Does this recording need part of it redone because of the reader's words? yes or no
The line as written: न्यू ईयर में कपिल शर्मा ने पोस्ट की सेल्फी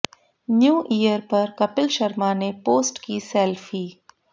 yes